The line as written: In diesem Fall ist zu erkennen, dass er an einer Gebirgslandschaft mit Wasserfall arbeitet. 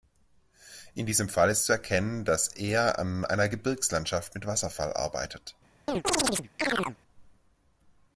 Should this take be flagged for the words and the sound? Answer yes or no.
yes